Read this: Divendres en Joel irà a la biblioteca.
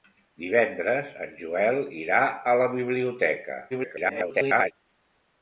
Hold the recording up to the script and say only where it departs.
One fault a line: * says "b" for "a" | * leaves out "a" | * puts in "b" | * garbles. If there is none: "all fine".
* garbles